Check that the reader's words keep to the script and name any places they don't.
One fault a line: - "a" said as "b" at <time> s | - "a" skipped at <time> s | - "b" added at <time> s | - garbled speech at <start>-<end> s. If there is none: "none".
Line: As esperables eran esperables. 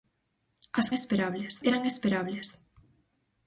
none